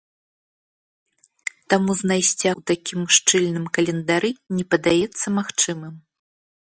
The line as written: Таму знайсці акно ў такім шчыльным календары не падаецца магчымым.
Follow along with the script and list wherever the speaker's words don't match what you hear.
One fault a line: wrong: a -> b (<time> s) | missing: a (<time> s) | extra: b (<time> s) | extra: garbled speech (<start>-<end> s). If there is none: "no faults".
missing: акно (2.5 s)